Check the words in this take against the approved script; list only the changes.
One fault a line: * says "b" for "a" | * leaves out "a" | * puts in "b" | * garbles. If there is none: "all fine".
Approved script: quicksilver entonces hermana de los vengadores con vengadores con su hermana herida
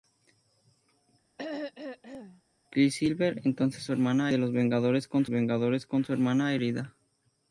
all fine